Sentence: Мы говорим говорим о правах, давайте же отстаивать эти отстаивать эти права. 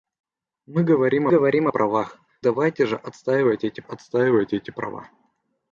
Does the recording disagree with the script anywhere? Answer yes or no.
no